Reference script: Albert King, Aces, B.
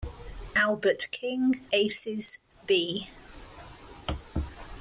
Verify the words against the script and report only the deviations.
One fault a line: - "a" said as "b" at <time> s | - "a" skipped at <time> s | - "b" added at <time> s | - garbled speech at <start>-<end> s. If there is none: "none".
none